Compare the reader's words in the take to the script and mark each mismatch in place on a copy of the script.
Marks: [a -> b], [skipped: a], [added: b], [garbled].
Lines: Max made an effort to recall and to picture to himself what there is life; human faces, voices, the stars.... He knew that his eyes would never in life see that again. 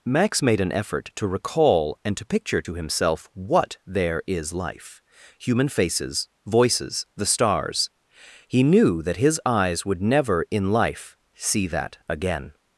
Max made an effort to recall and to picture to himself what there is life; human faces, voices, the stars.... He knew that his eyes would never in life see that again.